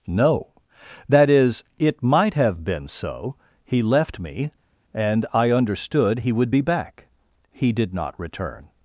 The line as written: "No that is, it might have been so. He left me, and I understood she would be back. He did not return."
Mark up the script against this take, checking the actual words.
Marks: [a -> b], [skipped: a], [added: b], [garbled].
"No that is, it might have been so. He left me, and I understood [she -> he] would be back. He did not return."